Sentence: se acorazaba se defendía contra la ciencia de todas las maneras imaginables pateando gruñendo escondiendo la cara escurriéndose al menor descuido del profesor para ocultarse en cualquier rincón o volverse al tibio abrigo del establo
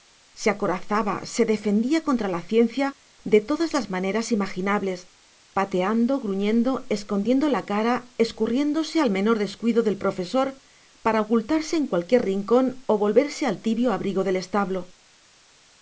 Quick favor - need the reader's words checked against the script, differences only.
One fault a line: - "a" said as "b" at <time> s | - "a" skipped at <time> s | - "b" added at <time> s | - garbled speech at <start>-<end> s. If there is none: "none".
none